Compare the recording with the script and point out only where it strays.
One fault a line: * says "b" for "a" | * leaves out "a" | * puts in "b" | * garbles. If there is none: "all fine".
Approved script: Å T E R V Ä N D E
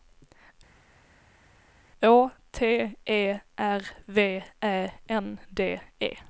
all fine